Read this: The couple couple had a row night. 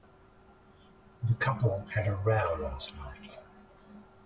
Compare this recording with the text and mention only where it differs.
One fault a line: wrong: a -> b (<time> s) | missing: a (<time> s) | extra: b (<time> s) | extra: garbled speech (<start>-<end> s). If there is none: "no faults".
missing: couple (1.8 s)
extra: last (2.5 s)